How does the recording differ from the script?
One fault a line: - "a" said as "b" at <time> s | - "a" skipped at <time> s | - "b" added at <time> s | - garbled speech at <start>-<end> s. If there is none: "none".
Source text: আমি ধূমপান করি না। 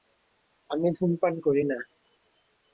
none